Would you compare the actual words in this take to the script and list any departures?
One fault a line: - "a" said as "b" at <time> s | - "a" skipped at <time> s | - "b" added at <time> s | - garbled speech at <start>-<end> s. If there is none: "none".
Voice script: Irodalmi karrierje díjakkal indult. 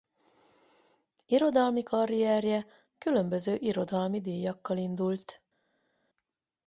- "különböző irodalmi" added at 3.0 s